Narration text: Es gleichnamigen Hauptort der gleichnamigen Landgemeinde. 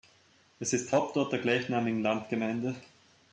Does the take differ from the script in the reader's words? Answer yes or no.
yes